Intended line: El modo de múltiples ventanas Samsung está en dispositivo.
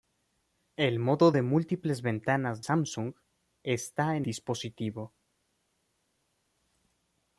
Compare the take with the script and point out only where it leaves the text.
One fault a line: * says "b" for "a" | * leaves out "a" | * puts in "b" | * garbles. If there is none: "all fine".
all fine